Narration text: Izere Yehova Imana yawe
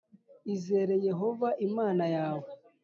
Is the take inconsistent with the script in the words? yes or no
no